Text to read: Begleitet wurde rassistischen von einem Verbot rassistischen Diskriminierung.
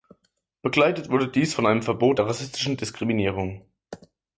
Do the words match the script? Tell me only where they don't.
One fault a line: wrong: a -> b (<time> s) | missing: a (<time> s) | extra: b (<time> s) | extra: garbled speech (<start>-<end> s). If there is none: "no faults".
wrong: rassistischen -> dies (1.3 s)
extra: der (2.2 s)